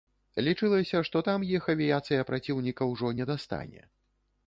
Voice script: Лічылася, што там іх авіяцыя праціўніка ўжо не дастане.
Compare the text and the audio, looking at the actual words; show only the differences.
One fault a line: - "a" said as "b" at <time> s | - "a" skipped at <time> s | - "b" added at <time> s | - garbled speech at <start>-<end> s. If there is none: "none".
none